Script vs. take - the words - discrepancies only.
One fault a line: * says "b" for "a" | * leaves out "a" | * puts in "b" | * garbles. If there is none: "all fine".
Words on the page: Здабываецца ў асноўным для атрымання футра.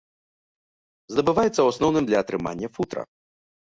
all fine